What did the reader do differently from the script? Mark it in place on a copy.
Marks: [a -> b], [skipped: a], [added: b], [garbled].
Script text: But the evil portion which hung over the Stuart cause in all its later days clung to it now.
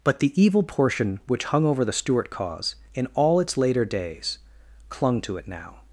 But the evil portion which hung over the Stuart cause in all its later days clung to it now.